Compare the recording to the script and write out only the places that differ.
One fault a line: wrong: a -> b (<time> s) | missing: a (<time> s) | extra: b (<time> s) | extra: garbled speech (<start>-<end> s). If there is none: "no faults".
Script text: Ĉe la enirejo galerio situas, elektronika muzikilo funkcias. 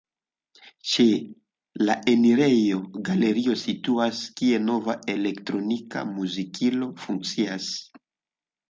extra: kie nova (4.4 s)